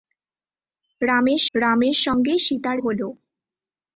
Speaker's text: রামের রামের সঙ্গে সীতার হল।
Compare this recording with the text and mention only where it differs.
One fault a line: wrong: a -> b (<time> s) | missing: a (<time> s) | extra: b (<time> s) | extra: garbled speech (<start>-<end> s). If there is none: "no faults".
no faults